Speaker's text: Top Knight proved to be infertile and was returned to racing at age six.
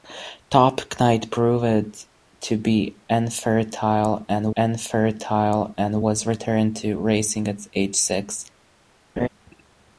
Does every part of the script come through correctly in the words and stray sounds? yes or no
no